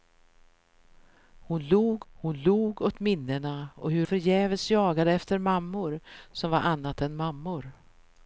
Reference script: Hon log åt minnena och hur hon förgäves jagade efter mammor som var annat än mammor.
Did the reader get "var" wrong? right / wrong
right